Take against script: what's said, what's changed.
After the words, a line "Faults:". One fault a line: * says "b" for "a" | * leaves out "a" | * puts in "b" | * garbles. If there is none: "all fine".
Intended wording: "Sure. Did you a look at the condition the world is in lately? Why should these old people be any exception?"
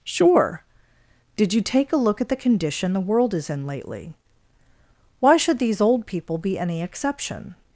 "Sure. Did you take a look at the condition the world is in lately? Why should these old people be any exception?"
Faults:
* puts in "take"